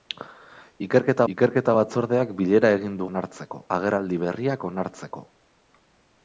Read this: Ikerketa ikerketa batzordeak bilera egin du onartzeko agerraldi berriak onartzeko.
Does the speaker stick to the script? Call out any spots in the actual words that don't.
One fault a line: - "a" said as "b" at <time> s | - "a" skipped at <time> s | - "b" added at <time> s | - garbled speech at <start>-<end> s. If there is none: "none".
none